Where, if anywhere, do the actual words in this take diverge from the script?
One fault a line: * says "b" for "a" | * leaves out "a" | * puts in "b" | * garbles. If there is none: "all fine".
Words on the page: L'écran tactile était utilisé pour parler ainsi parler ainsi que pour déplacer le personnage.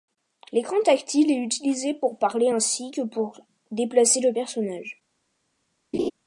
* says "est" for "était"
* leaves out "parler ainsi"